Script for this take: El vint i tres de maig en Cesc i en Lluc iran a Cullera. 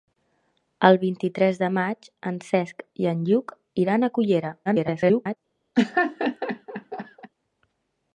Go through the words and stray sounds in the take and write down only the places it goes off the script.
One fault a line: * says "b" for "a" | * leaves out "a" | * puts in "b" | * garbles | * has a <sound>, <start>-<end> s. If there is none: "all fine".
* garbles
* has a laugh, 5.7-7.3 s